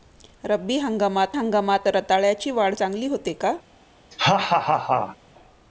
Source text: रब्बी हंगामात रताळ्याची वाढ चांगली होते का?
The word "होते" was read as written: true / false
true